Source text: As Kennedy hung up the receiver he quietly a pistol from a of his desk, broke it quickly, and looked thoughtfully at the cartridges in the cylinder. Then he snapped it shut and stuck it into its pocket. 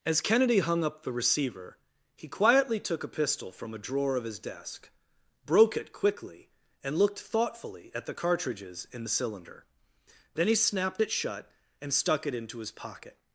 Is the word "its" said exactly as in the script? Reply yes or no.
no